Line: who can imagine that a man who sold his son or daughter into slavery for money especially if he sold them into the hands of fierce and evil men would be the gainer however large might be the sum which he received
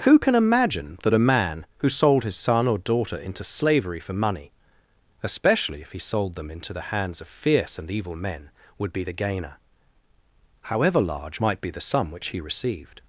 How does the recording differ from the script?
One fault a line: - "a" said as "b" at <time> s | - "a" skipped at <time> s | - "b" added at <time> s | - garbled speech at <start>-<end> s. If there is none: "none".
none